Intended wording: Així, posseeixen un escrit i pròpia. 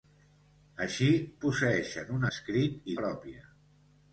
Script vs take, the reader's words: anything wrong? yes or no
no